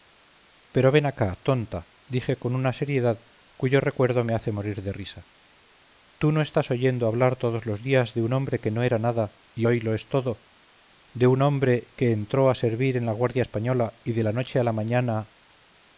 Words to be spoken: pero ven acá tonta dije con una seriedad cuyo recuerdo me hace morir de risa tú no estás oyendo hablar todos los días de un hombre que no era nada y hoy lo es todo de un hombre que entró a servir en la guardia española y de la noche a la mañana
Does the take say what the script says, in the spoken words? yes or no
yes